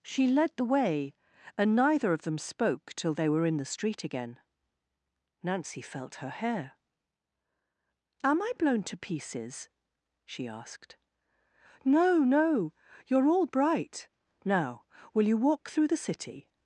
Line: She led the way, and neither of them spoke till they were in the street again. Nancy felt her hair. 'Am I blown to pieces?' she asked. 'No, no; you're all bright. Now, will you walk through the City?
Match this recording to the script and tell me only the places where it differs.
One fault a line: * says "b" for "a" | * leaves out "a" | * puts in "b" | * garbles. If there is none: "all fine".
all fine